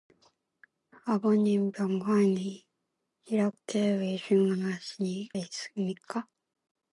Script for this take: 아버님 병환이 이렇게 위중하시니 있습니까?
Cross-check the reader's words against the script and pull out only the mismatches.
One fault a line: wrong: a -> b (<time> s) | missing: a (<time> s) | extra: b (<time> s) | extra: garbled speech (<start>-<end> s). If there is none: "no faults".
no faults